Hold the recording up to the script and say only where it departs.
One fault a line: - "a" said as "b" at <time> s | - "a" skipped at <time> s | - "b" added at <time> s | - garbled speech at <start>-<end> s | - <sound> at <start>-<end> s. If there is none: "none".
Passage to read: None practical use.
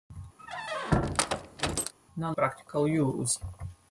- squeak at 0.4-1.9 s